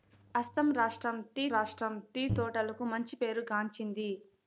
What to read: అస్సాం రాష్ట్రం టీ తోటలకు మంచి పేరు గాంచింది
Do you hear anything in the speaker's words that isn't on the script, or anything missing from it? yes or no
yes